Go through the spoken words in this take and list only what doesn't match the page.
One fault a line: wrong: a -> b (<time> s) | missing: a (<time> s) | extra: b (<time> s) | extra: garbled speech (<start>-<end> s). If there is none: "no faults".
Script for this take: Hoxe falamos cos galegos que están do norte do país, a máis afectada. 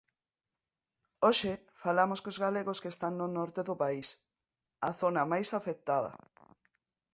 wrong: do -> no (3.2 s)
extra: zona (5.0 s)